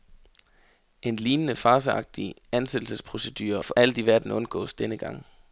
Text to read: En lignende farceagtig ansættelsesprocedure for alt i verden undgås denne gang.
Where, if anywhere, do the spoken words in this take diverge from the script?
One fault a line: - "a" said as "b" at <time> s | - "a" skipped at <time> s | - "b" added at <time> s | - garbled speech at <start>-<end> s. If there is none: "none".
none